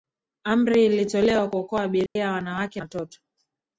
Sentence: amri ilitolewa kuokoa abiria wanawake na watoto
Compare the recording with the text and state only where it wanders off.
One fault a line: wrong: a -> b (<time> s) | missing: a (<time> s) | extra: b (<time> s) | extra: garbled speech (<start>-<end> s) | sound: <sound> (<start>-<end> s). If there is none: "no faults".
sound: dropout (2.1-2.2 s)
missing: na (2.8 s)